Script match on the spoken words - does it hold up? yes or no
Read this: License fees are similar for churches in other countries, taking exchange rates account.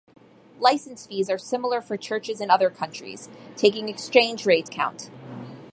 yes